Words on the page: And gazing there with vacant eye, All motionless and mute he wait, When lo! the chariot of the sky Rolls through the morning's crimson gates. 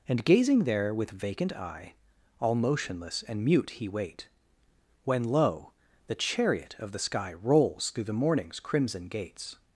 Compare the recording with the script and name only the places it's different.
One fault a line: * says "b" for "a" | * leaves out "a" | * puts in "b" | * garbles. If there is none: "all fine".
all fine